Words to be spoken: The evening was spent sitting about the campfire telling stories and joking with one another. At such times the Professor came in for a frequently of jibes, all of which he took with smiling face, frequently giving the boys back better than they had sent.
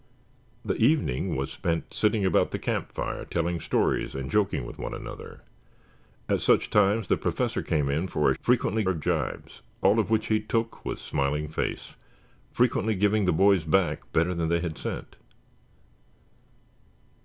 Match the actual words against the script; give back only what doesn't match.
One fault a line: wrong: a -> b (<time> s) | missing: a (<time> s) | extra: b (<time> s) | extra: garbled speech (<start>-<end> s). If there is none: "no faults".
no faults